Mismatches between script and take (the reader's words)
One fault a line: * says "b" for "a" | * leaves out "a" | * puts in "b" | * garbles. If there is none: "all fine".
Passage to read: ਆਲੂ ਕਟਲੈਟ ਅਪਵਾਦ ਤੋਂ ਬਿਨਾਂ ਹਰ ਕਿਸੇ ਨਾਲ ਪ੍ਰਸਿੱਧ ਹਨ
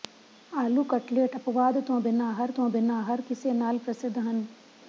* puts in "ਤੋਂ ਬਿਨਾਂ ਹਰ"